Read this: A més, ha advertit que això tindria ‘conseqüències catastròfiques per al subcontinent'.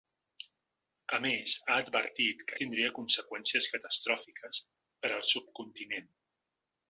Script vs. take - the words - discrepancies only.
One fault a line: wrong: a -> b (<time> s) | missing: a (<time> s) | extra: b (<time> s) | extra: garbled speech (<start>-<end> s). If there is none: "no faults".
missing: això (2.6 s)